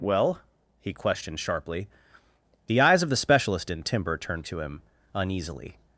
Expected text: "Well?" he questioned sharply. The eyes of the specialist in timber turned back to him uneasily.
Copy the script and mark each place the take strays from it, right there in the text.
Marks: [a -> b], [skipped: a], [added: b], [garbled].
"Well?" he questioned sharply. The eyes of the specialist in timber turned [skipped: back] to him uneasily.